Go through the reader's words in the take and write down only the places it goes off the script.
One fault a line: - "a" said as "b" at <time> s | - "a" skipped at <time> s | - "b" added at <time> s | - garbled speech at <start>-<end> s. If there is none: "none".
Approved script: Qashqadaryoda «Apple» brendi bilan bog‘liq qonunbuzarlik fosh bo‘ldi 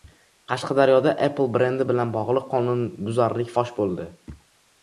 none